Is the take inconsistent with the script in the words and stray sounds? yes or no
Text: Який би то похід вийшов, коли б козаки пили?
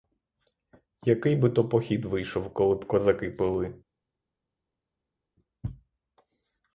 no